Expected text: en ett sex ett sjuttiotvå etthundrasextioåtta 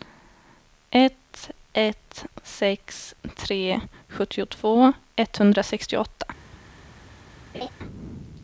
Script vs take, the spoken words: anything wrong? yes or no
yes